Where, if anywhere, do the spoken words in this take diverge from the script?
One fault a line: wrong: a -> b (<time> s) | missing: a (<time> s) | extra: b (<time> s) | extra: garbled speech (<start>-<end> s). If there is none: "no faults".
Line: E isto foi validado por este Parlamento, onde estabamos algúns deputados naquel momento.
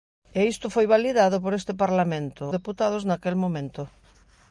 missing: onde estabamos algúns (2.4 s)